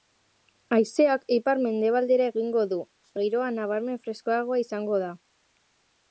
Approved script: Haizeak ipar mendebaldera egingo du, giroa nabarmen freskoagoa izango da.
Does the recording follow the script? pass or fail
pass